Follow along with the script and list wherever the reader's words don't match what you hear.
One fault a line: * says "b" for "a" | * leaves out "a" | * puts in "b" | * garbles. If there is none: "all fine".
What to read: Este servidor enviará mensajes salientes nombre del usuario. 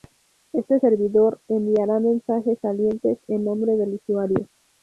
* puts in "en"